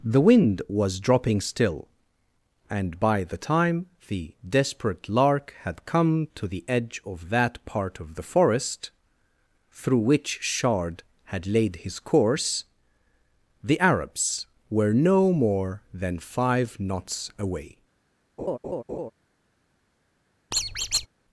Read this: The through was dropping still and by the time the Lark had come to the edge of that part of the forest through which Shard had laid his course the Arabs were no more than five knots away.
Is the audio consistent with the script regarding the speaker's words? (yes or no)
no